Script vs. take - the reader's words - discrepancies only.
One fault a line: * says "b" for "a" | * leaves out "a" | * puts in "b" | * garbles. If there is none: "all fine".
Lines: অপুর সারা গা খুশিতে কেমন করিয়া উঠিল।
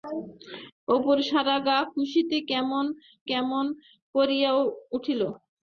* puts in "কেমন"